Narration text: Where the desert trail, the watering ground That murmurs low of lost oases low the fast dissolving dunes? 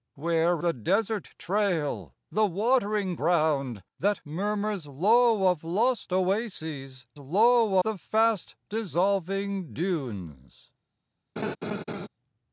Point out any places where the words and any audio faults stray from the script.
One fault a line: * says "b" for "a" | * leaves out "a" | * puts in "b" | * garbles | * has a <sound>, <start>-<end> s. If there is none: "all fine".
* has a laugh, 11.4-12.1 s